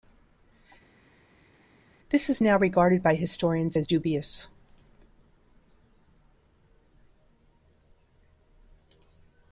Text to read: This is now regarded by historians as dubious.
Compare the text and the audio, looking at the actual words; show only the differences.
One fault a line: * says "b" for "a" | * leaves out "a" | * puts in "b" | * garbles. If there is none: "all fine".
all fine